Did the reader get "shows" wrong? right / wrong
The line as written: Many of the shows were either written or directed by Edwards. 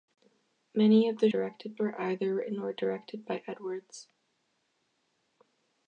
wrong